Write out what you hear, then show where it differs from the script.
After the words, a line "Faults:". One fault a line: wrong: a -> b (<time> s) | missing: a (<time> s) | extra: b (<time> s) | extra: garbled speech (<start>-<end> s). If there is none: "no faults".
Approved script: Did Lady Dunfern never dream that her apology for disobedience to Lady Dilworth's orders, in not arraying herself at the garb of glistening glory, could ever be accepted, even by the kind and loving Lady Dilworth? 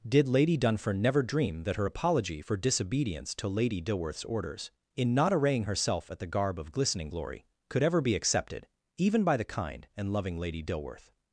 Did Lady Dunfern never dream that her apology for disobedience to Lady Dilworth's orders, in not arraying herself at the garb of glistening glory, could ever be accepted, even by the kind and loving Lady Dilworth?
Faults:
no faults